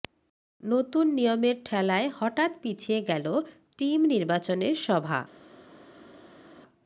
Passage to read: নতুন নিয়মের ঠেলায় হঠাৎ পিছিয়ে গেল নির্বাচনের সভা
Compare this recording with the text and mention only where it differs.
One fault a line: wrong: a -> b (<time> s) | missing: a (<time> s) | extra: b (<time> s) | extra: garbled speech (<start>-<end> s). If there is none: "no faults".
extra: টিম (3.8 s)